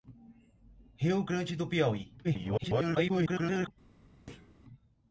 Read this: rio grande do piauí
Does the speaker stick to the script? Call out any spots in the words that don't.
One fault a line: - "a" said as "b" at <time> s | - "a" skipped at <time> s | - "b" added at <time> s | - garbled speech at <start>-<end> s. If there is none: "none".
- garbled speech at 2.2-3.7 s